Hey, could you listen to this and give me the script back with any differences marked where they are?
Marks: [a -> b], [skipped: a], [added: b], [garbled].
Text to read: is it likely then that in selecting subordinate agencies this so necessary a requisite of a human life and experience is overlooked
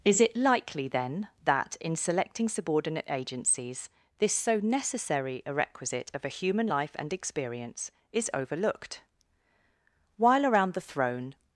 is it likely then that in selecting subordinate agencies this so necessary a requisite of a human life and experience is overlooked [added: while around the throne]